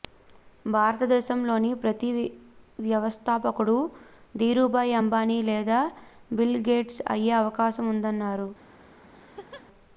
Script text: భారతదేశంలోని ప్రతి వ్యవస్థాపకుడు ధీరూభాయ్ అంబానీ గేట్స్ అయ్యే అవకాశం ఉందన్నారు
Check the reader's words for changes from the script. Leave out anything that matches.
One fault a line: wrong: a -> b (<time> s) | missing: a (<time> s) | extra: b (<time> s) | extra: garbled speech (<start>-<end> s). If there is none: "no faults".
extra: లేదా బిల్ (5.5 s)